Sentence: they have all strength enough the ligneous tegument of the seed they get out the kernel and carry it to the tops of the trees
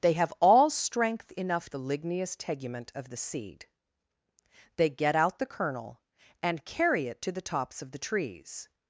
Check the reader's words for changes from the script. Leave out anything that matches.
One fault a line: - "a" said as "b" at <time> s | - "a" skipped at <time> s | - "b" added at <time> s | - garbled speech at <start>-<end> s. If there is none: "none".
none